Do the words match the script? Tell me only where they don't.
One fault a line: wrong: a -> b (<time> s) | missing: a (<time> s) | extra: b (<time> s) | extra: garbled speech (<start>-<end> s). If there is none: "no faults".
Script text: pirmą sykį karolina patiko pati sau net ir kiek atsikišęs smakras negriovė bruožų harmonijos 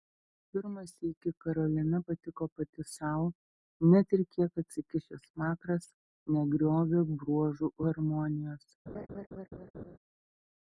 no faults